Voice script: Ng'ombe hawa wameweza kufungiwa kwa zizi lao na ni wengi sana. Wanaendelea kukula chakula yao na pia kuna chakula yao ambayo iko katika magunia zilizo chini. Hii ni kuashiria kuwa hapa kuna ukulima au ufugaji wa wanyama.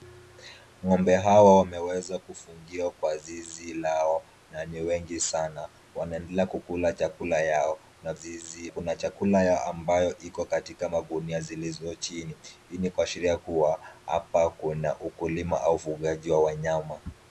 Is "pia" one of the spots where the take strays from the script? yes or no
yes